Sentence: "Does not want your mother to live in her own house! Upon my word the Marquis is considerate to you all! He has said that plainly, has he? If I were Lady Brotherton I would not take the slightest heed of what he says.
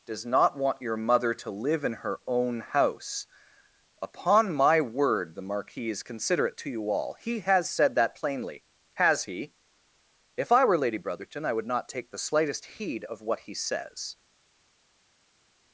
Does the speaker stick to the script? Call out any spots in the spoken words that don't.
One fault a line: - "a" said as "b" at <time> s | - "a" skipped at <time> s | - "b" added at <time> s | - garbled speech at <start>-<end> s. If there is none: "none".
none